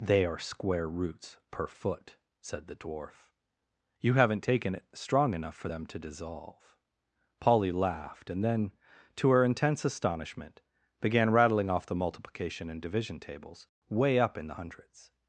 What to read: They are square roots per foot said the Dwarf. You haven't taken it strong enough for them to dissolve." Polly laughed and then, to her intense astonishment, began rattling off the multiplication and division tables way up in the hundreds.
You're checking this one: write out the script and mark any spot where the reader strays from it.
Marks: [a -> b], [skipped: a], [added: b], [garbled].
They are square roots per foot said the Dwarf. You haven't taken it strong enough for them to dissolve." Polly laughed and then, to her intense astonishment, began rattling off the multiplication and division tables way up in the hundreds.